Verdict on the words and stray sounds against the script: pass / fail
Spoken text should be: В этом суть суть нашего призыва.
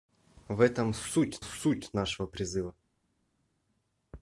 pass